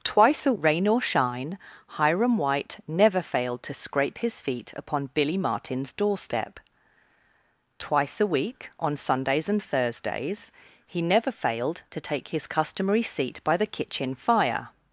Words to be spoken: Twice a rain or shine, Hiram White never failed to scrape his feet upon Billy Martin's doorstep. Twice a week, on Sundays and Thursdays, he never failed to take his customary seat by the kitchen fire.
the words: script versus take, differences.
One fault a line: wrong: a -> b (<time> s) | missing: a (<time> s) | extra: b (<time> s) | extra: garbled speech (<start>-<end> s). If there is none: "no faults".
no faults